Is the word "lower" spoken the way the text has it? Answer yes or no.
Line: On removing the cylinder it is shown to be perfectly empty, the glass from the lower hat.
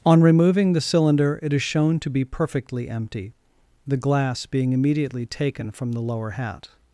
yes